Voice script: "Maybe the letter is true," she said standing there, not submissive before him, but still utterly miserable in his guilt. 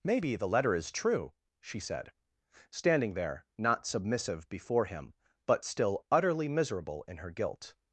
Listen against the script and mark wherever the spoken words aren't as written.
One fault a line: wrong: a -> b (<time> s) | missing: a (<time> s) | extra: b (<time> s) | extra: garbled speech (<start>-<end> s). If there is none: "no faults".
wrong: his -> her (7.2 s)